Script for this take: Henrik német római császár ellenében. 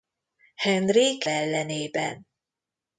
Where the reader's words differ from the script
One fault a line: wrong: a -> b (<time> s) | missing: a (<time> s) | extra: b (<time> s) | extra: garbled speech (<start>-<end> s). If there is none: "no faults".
missing: német római császár (1.2 s)